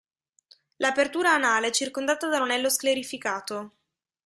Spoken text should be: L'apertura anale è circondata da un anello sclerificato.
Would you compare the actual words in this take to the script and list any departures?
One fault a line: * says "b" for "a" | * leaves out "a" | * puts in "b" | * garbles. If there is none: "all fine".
all fine